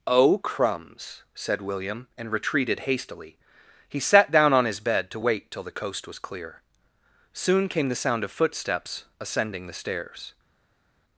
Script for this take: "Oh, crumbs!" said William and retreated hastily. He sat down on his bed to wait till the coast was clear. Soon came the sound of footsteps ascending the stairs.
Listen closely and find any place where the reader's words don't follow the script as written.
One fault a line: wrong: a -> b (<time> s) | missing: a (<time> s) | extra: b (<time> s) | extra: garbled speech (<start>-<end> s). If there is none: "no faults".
no faults